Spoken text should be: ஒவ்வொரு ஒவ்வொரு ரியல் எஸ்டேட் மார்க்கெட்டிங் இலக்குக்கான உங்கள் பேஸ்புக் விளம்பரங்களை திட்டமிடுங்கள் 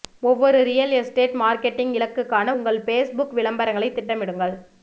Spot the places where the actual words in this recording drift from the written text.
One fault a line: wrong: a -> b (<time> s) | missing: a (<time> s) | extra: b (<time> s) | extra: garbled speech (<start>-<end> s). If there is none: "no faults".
missing: ஒவ்வொரு (0.6 s)